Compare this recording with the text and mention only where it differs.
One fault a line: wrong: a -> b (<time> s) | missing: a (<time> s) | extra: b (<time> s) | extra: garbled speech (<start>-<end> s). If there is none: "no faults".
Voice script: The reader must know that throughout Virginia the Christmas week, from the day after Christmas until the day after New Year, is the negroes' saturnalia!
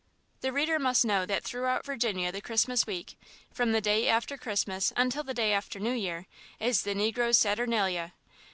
no faults